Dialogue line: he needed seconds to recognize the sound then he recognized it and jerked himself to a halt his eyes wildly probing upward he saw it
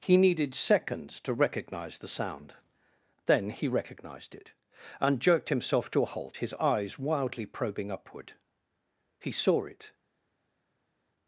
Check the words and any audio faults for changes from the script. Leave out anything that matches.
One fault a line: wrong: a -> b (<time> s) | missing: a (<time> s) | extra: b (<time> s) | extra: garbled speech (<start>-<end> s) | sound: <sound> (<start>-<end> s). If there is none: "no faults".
no faults